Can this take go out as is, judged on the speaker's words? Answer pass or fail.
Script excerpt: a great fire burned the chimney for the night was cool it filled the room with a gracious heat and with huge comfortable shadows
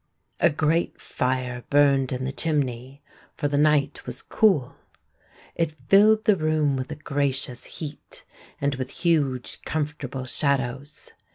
fail